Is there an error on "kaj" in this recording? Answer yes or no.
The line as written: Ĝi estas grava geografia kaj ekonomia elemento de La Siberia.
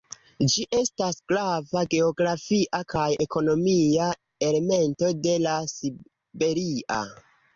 no